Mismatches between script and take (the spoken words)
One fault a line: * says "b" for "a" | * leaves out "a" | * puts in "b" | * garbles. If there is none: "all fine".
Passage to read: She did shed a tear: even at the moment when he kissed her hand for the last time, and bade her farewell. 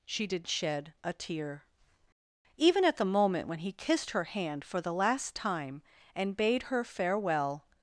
all fine